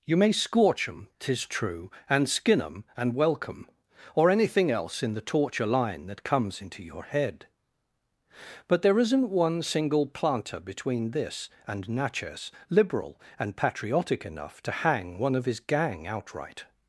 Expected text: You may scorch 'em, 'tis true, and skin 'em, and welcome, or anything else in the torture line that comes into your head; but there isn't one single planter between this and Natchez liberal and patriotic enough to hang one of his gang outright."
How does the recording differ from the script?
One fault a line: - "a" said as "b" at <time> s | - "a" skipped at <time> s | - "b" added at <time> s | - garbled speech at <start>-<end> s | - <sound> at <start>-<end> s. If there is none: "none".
none